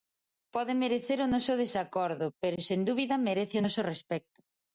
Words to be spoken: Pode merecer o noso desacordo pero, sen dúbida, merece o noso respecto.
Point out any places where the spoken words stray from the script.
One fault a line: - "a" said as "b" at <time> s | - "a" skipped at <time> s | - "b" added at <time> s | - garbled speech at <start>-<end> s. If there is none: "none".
none